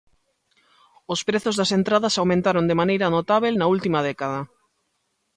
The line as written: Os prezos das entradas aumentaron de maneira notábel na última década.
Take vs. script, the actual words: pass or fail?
pass